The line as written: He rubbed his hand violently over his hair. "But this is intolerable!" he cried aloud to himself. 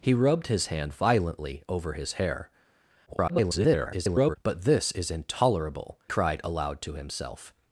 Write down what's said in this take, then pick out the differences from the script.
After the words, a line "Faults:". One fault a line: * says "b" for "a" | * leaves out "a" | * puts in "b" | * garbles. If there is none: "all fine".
He rubbed his hand violently over his hair. [garbled] "But this is intolerable!" cried aloud to himself.
Faults:
* garbles
* leaves out "he"